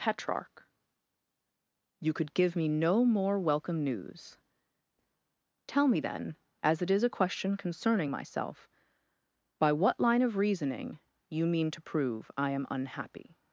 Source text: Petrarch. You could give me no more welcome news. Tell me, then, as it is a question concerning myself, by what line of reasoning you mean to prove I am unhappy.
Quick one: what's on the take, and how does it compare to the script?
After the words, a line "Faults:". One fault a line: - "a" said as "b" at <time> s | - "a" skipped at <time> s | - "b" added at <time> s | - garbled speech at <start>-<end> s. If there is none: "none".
Petrarch. You could give me no more welcome news. Tell me, then, as it is a question concerning myself, by what line of reasoning you mean to prove I am unhappy.
Faults:
none